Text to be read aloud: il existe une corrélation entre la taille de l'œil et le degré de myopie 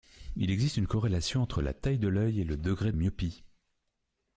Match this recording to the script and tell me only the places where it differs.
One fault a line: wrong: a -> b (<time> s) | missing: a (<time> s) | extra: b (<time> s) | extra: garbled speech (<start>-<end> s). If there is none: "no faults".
missing: de (2.9 s)